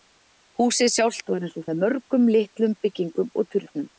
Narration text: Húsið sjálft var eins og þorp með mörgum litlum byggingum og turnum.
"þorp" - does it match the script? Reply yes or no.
no